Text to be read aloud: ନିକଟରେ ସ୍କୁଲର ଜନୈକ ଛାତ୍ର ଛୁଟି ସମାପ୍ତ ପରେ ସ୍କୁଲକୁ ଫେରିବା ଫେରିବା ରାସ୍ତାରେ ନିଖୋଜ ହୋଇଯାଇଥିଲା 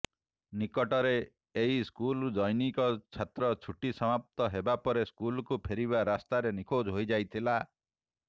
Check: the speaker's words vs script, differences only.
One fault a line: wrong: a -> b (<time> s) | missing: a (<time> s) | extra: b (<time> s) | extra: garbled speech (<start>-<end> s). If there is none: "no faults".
extra: ଏହି (1.6 s)
extra: ହେବା (4.5 s)
missing: ଫେରିବା (6.1 s)